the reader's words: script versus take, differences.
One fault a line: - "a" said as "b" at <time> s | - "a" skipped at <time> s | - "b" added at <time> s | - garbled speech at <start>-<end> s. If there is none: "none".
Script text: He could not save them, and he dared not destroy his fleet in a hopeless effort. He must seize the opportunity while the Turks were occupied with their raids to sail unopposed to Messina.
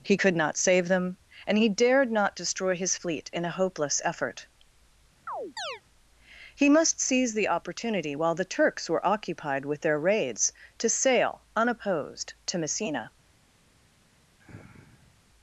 none